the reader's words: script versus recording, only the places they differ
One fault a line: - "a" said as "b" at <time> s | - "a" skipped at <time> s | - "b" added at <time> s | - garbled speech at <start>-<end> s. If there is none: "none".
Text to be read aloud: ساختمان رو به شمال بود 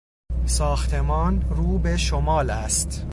- "بود" said as "است" at 2.5 s